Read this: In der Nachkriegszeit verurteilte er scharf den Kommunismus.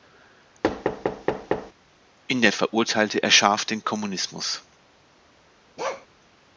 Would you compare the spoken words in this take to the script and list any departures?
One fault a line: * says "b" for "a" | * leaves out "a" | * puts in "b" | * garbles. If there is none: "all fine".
* leaves out "Nachkriegszeit"